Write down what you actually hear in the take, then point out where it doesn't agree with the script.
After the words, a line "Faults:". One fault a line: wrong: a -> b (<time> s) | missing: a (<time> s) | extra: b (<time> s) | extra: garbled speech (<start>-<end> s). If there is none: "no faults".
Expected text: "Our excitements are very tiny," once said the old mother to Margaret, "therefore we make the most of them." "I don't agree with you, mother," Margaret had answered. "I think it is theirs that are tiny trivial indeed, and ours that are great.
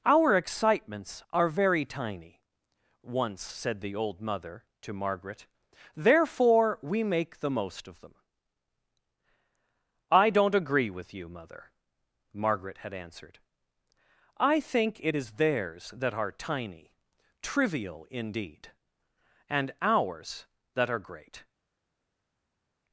"Our excitements are very tiny," once said the old mother to Margaret, "therefore we make the most of them." "I don't agree with you, mother," Margaret had answered. "I think it is theirs that are tiny trivial indeed, and ours that are great.
Faults:
no faults